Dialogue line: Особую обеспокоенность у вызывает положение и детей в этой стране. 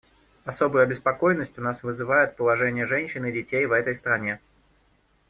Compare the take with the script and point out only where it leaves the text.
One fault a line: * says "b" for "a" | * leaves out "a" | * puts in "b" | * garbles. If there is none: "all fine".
* puts in "нас"
* puts in "женщин"